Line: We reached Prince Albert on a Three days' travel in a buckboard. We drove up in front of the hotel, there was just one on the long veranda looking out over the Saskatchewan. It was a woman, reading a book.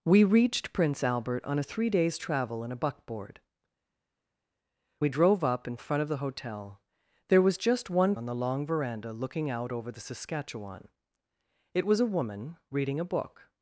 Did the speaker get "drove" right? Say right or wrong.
right